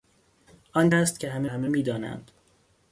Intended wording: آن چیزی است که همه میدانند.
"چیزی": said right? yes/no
no